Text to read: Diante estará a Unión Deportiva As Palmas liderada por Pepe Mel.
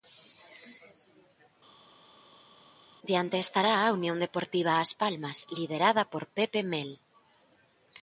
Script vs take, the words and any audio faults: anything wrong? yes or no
no